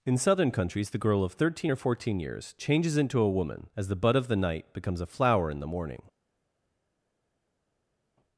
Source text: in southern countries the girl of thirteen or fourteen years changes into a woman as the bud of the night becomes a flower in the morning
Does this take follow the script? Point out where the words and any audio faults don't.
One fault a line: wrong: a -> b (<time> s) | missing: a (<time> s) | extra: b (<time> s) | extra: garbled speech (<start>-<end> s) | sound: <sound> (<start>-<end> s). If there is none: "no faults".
no faults